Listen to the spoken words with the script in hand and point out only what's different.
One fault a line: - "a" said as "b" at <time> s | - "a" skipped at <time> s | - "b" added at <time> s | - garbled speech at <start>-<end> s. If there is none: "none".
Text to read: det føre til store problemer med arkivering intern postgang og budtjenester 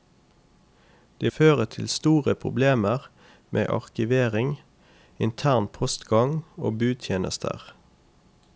none